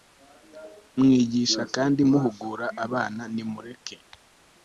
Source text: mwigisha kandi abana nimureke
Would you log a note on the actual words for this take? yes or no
yes